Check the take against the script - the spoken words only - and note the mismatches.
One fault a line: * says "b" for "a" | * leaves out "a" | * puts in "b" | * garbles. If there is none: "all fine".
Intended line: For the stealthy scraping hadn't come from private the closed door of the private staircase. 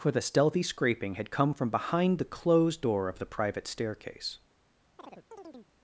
* says "had" for "hadn't"
* says "behind" for "private"